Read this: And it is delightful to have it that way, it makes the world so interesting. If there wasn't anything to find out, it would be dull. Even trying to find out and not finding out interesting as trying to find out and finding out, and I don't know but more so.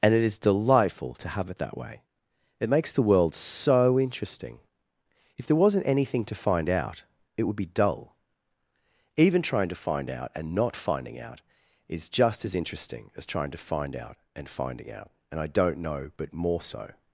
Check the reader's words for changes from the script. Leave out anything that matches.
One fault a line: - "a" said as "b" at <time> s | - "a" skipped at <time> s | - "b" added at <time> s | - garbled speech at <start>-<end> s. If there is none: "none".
- "is just as" added at 11.9 s